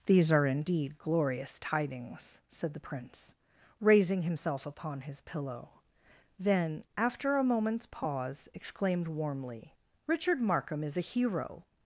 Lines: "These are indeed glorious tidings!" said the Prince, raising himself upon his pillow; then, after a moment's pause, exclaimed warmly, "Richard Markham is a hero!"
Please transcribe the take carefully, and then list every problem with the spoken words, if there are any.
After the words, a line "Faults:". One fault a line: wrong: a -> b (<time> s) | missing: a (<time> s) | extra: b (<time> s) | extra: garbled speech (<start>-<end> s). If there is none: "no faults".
"These are indeed glorious tidings!" said the Prince, raising himself upon his pillow; then, after a moment's pause, exclaimed warmly, "Richard Markham is a hero!"
Faults:
no faults